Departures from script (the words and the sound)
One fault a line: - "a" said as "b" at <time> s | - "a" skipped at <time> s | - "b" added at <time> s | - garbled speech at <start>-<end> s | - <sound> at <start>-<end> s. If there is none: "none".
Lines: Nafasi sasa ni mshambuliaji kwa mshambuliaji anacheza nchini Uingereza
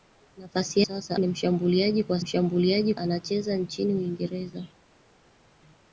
none